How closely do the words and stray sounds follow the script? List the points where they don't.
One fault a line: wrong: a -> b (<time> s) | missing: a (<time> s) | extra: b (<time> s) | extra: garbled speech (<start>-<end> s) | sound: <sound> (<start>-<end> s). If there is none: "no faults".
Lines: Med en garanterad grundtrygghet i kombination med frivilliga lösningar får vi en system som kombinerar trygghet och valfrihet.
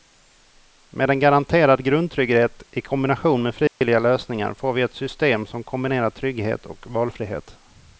sound: dropout (3.7-3.8 s)
wrong: en -> ett (4.8 s)